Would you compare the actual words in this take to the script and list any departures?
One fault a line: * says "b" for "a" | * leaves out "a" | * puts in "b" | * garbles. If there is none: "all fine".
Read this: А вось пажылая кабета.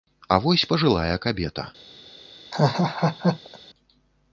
all fine